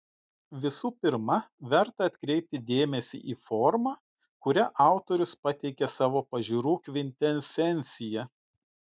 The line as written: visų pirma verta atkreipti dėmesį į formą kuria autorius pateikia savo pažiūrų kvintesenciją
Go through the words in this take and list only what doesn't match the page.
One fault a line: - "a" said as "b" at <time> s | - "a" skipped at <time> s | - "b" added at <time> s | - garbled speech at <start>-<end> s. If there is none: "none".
none